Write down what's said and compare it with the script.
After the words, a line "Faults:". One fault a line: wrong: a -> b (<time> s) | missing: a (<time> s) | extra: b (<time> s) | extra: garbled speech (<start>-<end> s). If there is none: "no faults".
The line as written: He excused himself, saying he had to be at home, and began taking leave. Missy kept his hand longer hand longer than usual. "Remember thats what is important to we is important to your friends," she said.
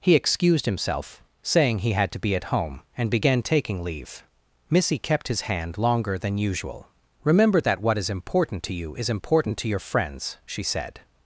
He excused himself, saying he had to be at home, and began taking leave. Missy kept his hand longer than usual. "Remember that what is important to you is important to your friends," she said.
Faults:
missing: hand longer (6.2 s)
wrong: thats -> that (7.6 s)
wrong: we -> you (8.7 s)